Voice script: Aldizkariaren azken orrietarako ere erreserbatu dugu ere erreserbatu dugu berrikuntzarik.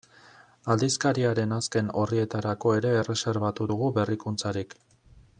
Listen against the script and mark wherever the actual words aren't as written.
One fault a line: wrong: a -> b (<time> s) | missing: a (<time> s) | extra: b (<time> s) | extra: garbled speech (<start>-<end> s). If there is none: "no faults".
missing: ere erreserbatu dugu (3.9 s)